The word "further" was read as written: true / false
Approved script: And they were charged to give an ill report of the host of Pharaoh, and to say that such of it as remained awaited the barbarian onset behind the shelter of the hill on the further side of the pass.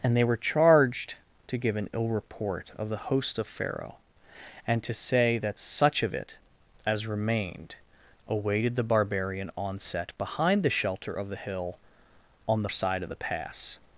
false